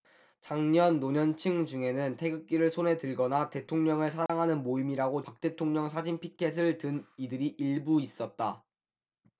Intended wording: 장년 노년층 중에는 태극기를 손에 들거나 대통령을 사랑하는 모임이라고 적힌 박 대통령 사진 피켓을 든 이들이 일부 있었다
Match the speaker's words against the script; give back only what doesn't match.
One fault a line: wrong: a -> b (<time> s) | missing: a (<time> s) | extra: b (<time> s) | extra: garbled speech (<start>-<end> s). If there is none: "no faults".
missing: 적힌 (5.2 s)